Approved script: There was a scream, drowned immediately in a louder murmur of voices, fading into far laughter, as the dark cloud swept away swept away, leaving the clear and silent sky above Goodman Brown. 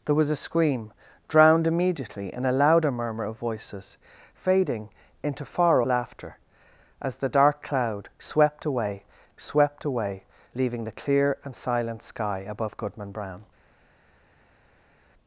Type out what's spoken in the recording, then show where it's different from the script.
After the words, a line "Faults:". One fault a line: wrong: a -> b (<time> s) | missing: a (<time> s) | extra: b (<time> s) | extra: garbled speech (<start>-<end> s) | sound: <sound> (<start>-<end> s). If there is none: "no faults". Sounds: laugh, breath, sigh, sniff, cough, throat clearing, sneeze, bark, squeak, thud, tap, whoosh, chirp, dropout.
There was a scream, drowned immediately in a louder murmur of voices, fading into far laughter, as the dark cloud swept away swept away, leaving the clear and silent sky above Goodman Brown.
Faults:
no faults